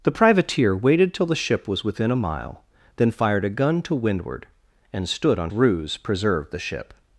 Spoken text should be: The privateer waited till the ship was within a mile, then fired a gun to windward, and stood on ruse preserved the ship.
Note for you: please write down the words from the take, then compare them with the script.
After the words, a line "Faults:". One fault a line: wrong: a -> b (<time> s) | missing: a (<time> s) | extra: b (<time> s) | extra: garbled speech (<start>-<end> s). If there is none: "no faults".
The privateer waited till the ship was within a mile, then fired a gun to windward, and stood on ruse preserved the ship.
Faults:
no faults